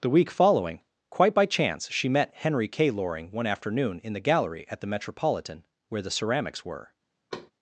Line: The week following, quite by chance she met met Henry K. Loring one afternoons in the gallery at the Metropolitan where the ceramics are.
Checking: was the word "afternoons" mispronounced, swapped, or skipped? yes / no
yes